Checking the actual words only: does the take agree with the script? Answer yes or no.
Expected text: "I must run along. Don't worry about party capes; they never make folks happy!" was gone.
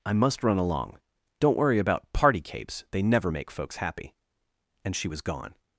no